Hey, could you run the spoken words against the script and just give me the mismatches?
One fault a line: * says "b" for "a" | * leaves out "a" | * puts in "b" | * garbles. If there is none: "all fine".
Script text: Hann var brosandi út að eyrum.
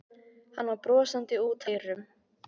* leaves out "að"